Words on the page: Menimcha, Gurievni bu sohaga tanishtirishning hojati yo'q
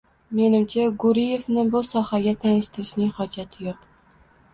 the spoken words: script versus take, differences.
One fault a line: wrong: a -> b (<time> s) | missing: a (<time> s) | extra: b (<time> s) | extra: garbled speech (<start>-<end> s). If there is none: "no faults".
no faults